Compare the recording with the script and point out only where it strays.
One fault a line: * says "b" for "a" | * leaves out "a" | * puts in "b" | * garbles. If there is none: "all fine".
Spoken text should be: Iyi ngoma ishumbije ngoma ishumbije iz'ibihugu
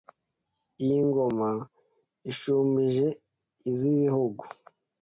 * leaves out "ngoma ishumbije"